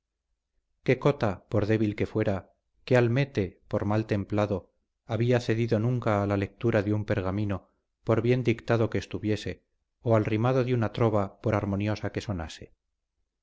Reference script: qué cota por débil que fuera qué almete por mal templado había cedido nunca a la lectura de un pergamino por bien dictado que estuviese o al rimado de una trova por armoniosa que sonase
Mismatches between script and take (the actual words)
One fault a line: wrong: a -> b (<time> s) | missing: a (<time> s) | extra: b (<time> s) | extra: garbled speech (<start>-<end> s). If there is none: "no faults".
no faults